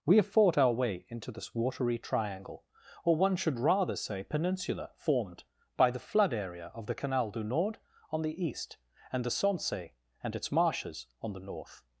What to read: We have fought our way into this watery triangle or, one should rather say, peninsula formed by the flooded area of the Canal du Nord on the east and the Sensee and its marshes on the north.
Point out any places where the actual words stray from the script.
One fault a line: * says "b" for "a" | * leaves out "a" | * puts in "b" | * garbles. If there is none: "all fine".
* says "flood" for "flooded"